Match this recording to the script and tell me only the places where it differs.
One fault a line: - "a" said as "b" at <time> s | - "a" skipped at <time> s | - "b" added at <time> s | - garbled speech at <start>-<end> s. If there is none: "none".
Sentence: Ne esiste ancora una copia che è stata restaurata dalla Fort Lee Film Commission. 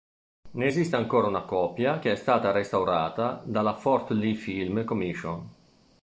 none